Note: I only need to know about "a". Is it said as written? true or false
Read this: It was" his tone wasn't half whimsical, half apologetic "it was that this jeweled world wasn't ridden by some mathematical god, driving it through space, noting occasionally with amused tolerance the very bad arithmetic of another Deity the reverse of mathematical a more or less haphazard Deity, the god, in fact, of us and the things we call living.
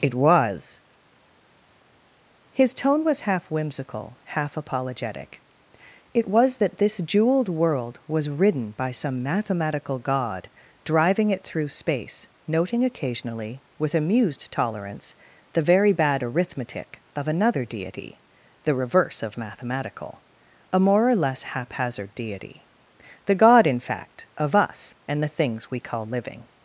true